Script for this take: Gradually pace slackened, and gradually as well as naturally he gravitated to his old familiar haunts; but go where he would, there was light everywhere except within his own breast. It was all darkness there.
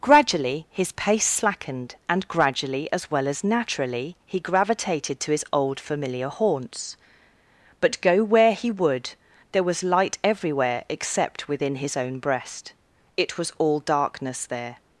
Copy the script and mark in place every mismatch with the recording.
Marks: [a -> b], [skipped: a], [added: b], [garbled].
Gradually [added: his] pace slackened, and gradually as well as naturally he gravitated to his old familiar haunts; but go where he would, there was light everywhere except within his own breast. It was all darkness there.